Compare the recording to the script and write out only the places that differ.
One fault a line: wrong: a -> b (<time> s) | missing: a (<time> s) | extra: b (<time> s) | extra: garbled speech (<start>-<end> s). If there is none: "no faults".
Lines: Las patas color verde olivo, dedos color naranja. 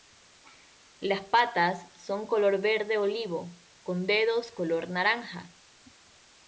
extra: son (1.9 s)
extra: con (3.8 s)